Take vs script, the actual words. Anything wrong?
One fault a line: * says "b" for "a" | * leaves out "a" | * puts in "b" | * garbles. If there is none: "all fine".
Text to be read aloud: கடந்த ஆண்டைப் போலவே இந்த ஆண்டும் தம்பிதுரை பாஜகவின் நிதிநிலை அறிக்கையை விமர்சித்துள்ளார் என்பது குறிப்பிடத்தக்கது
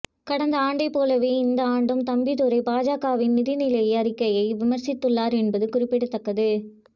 all fine